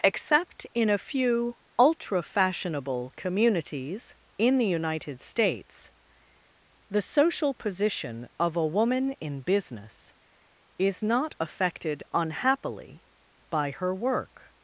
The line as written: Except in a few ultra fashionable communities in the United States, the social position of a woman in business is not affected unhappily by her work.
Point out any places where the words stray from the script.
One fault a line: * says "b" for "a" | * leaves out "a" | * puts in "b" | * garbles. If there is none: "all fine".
all fine